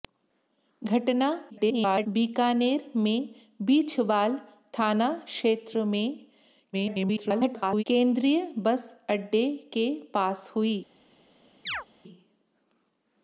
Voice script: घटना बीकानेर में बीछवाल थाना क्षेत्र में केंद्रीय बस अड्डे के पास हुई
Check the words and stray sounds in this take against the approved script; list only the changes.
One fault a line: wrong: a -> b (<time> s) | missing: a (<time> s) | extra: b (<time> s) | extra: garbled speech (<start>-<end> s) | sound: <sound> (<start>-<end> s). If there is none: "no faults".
extra: garbled speech (1.5-2.1 s)
extra: garbled speech (6.7-7.8 s)
sound: chirp (11.7-11.9 s)